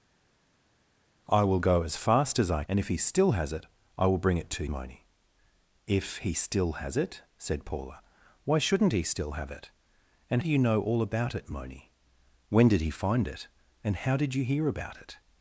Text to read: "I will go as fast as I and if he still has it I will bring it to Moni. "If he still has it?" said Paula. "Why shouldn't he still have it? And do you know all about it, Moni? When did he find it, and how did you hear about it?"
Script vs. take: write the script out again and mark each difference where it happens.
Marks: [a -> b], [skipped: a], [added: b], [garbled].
"I will go as fast as I and if he still has it I will bring it to Moni. "If he still has it?" said Paula. "Why shouldn't he still have it? And do you know all about it, Moni? When did he find it, and how did you hear about it?"